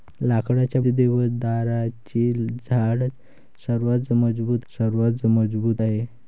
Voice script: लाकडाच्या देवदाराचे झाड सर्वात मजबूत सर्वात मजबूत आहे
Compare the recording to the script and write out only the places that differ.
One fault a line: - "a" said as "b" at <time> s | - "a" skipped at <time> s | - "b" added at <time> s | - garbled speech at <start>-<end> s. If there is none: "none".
none